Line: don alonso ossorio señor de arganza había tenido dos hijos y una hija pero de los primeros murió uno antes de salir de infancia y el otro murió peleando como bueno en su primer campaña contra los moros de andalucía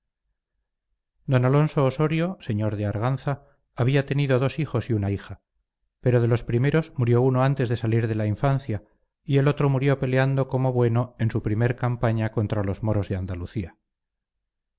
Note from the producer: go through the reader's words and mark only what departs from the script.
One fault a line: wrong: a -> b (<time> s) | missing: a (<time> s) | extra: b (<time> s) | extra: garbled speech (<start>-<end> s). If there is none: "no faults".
extra: la (8.1 s)